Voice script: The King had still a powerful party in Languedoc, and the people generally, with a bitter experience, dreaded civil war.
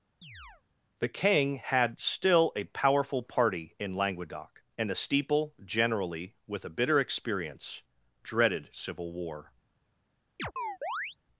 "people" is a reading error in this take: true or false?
true